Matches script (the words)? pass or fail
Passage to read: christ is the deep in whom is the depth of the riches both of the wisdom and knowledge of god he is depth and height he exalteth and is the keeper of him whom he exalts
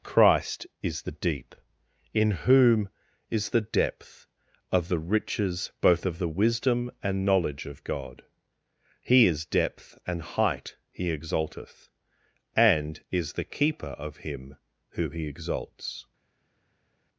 fail